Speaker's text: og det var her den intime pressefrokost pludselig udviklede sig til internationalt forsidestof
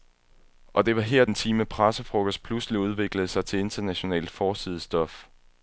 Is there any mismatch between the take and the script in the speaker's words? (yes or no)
yes